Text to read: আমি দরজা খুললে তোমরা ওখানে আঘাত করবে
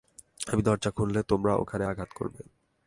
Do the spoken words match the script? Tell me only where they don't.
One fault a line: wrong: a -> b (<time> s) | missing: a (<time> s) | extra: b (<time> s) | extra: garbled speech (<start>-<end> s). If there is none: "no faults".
no faults